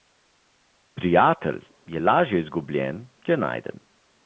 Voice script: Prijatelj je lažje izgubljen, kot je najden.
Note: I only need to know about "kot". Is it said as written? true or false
false